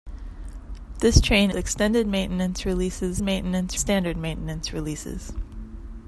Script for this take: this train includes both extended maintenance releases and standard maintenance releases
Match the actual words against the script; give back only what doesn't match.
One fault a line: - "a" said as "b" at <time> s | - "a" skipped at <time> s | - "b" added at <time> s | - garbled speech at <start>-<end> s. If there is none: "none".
- "includes both" skipped at 1.5 s
- "and" said as "maintenance" at 3.2 s